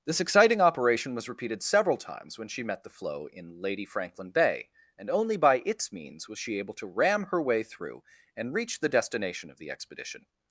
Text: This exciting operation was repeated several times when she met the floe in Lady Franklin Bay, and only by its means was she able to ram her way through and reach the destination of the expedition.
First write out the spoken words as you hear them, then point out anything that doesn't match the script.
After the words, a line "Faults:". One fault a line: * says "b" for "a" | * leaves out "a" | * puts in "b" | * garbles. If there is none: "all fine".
This exciting operation was repeated several times when she met the floe in Lady Franklin Bay, and only by its means was she able to ram her way through and reach the destination of the expedition.
Faults:
all fine